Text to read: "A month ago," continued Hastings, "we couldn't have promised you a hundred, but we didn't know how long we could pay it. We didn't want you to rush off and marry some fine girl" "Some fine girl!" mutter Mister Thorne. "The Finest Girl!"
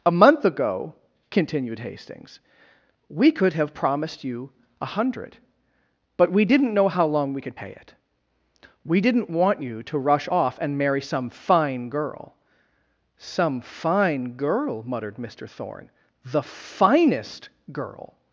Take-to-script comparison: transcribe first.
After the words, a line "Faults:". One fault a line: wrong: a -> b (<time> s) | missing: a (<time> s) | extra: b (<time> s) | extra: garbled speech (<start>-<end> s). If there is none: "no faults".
"A month ago," continued Hastings, "we could have promised you a hundred, but we didn't know how long we could pay it. We didn't want you to rush off and marry some fine girl" "Some fine girl!" muttered Mister Thorne. "The Finest Girl!"
Faults:
wrong: couldn't -> could (3.3 s)
wrong: mutter -> muttered (14.8 s)